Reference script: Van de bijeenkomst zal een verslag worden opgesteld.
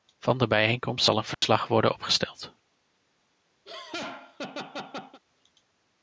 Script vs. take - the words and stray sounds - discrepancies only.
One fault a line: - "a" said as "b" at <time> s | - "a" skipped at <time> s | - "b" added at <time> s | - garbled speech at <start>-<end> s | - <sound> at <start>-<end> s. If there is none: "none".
- dropout at 1.3-1.4 s
- laugh at 3.7-5.2 s